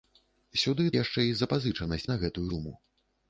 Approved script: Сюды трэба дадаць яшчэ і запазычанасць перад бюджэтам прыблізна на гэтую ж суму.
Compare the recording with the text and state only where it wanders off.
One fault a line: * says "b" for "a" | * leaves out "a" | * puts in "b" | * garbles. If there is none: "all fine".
* leaves out "трэба дадаць"
* leaves out "перад бюджэтам прыблізна"
* leaves out "ж"